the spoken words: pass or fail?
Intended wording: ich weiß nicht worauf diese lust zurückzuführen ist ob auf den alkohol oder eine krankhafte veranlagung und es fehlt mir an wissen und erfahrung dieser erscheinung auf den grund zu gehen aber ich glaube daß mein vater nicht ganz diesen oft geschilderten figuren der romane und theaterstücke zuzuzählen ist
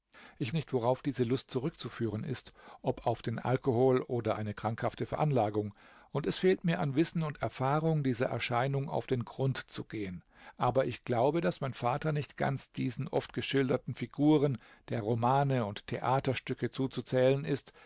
fail